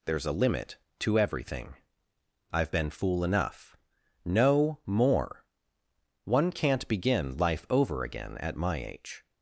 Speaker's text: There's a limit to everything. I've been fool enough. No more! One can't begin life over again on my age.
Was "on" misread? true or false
true